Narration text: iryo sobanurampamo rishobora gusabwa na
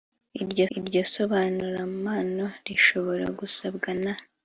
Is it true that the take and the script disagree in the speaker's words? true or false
true